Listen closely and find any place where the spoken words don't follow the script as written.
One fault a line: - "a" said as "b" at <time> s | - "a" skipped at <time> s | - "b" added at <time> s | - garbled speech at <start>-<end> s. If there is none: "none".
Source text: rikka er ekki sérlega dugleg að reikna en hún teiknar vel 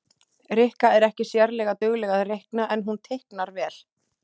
none